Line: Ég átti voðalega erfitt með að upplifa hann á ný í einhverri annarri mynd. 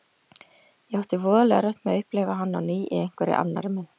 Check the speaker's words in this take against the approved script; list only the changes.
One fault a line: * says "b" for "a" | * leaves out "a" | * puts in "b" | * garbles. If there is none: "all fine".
all fine